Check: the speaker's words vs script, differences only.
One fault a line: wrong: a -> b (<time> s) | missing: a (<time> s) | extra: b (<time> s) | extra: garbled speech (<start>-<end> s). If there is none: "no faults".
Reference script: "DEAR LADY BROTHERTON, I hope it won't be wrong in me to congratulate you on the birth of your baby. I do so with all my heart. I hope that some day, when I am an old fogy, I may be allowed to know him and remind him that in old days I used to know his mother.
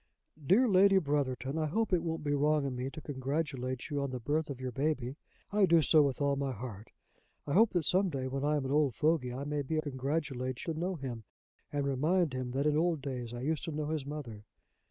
wrong: allowed -> congratulate (9.8 s)